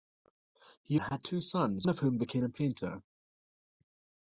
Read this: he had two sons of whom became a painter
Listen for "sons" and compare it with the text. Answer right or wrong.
right